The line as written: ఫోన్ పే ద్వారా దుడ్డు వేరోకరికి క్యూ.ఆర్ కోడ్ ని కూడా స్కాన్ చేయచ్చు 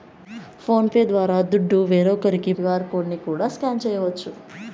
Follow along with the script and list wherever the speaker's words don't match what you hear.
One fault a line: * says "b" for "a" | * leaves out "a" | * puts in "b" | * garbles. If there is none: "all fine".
all fine